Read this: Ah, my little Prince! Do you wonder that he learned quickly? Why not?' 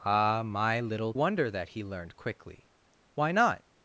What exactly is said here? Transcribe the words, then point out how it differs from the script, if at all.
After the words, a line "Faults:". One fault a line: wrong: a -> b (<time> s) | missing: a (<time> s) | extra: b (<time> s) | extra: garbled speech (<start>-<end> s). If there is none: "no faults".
Ah, my little Wonder that he learned quickly? Why not?'
Faults:
missing: Prince Do you (1.1 s)